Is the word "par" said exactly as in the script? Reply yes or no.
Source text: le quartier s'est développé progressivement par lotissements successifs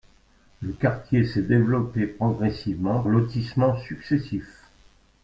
no